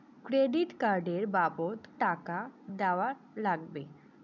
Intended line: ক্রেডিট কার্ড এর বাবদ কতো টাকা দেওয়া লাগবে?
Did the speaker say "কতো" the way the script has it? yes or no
no